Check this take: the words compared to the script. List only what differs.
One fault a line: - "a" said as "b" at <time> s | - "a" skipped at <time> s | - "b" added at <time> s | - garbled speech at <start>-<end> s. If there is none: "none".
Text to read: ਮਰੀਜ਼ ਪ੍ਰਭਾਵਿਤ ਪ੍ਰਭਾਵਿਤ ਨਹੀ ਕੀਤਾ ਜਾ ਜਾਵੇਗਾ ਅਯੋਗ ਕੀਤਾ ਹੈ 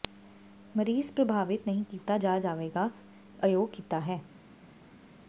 - "ਪ੍ਰਭਾਵਿਤ" skipped at 1.7 s